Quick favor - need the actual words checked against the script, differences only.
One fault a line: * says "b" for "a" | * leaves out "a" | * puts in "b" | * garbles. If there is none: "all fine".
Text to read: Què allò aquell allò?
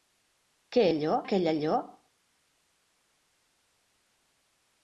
all fine